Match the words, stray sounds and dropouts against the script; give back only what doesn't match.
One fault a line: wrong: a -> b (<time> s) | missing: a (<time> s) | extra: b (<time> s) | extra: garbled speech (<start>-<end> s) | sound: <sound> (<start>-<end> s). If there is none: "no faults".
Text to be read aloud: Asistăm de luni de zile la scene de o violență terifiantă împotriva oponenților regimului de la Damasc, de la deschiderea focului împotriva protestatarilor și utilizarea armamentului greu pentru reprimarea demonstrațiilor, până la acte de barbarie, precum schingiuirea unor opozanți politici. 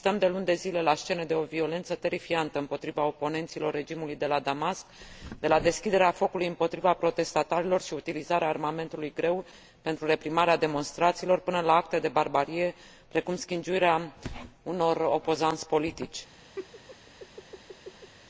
sound: laugh (16.6-18.1 s)